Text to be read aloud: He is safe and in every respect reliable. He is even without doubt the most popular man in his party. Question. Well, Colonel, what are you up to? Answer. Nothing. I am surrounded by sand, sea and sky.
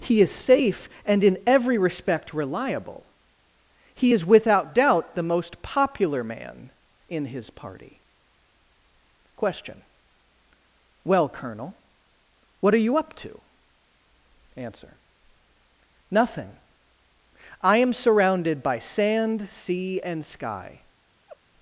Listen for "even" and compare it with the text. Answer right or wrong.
wrong